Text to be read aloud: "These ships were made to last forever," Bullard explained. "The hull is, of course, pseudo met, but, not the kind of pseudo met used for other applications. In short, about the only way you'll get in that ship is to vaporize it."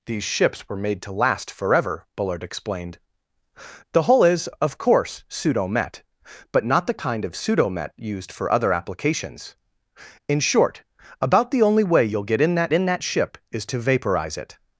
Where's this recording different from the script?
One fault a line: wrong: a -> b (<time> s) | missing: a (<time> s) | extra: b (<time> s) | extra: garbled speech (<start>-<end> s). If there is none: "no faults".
extra: in that (12.7 s)